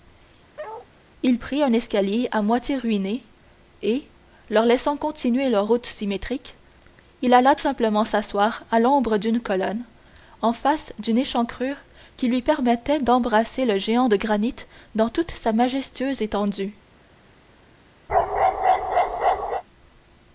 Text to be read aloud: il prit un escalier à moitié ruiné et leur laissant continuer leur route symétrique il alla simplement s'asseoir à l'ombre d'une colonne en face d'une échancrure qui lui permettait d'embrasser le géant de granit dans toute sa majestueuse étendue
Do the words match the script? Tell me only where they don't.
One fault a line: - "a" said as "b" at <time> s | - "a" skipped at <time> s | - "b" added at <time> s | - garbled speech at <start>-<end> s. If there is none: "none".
none